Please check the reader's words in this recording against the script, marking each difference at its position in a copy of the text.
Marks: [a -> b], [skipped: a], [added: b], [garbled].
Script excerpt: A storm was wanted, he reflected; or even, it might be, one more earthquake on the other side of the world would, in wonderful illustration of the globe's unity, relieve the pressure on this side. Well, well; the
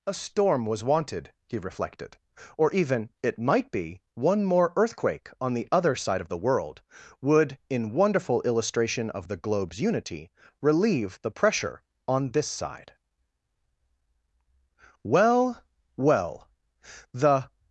A storm was wanted, he reflected; or even, it might be, one more earthquake on the other side of the world would, in wonderful illustration of the globe's unity, relieve the pressure on this side. Well, well; the